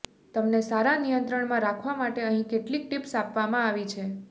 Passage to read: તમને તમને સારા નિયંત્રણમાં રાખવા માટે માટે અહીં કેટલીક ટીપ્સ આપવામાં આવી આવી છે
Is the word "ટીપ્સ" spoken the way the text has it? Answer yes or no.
yes